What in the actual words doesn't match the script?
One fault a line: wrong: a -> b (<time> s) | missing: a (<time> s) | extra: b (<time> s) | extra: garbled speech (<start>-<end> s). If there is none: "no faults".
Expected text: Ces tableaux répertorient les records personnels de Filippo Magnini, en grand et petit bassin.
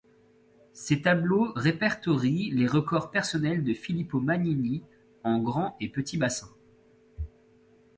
no faults